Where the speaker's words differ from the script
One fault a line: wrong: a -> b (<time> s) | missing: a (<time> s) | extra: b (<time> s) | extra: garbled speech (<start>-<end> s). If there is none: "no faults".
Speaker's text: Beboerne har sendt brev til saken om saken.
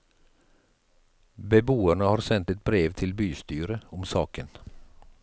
extra: et (2.5 s)
wrong: saken -> bystyret (3.1 s)